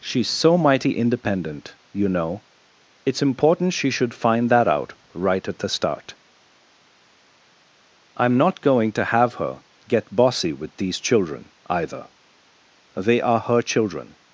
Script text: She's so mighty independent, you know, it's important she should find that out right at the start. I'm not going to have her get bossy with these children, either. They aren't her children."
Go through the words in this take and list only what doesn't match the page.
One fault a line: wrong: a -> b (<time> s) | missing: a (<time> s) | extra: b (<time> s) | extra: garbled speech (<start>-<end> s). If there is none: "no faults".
wrong: aren't -> are (13.2 s)